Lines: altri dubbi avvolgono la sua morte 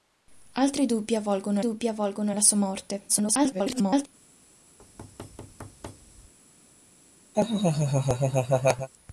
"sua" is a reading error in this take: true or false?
false